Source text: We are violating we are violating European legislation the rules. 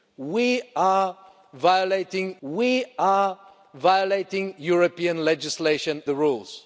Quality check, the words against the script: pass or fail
pass